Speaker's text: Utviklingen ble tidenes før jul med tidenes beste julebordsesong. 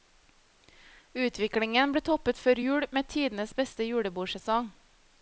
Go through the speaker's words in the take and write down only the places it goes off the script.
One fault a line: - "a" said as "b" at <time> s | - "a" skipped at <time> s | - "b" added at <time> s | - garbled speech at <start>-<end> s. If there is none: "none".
- "tidenes" said as "toppet" at 2.1 s